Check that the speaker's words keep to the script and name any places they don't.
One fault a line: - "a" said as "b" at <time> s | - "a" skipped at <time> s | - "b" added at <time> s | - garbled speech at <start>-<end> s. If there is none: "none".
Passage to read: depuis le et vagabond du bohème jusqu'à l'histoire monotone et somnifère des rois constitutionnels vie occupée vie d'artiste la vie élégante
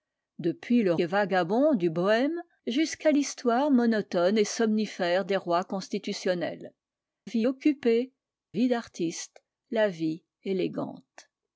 none